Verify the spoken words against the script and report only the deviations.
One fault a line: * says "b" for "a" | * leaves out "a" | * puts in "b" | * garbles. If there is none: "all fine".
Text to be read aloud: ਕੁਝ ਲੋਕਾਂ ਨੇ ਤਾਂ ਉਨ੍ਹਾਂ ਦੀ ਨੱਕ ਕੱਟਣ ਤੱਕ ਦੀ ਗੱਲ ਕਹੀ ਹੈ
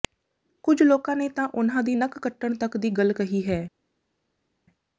all fine